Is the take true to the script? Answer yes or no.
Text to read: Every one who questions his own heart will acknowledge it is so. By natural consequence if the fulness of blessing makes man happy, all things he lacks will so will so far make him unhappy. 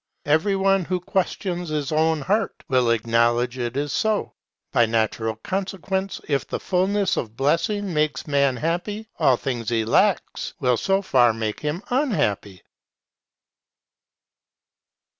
no